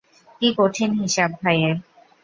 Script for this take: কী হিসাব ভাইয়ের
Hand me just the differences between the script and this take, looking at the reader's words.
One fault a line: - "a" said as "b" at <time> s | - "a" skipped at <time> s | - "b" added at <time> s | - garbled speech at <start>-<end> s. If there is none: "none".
- "কঠিন" added at 0.6 s